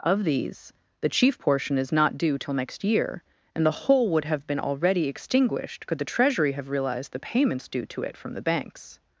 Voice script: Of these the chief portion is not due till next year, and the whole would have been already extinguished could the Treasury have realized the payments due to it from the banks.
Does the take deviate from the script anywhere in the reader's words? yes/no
no